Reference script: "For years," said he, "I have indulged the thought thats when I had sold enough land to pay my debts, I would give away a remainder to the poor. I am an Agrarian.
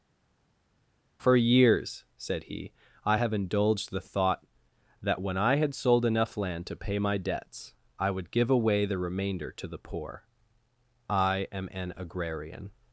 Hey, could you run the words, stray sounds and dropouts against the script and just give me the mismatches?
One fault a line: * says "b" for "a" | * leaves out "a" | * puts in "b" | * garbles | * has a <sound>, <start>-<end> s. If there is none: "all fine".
* says "that" for "thats"
* says "the" for "a"